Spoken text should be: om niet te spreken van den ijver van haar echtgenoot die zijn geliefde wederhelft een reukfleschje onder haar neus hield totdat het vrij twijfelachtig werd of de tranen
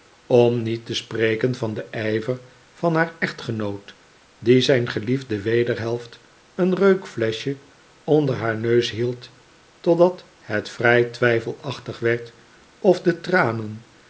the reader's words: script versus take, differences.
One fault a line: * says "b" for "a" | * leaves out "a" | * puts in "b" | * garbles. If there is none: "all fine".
all fine